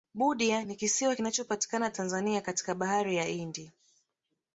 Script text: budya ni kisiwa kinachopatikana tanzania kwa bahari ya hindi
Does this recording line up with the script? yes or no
no